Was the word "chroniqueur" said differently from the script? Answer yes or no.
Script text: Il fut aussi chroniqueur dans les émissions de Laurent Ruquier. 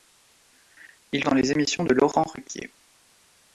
yes